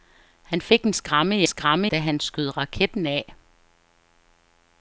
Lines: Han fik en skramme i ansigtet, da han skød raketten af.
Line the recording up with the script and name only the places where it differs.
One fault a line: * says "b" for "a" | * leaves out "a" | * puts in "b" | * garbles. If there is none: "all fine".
* says "skramme" for "ansigtet"